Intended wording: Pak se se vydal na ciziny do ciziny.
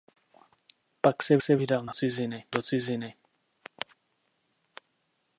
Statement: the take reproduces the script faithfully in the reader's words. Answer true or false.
true